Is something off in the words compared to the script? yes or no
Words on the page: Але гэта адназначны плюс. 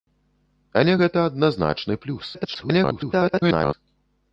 yes